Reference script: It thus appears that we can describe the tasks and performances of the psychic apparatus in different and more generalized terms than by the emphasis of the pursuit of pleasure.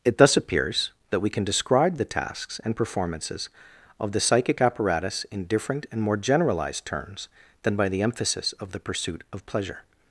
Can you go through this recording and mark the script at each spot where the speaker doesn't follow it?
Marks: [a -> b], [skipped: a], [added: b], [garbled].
It thus appears that we can describe the tasks and performances of the psychic apparatus in different and more generalized terms than by the emphasis of the pursuit of pleasure.